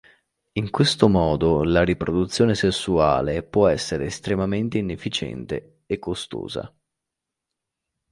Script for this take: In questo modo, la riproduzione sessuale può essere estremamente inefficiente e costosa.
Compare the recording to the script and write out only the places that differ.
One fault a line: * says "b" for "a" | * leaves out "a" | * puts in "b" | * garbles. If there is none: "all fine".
all fine